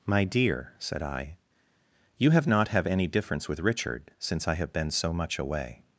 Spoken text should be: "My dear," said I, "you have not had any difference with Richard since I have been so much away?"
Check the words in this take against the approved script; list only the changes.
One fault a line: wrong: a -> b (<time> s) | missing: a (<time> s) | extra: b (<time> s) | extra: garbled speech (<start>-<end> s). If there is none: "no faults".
wrong: had -> have (2.7 s)